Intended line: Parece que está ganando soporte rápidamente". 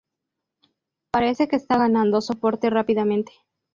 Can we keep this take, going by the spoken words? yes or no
yes